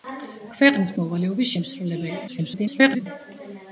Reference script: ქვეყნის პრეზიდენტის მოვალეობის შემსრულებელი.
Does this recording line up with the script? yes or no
no